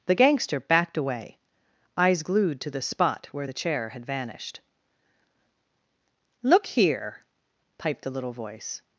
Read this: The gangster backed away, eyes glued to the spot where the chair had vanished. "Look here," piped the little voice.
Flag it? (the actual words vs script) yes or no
no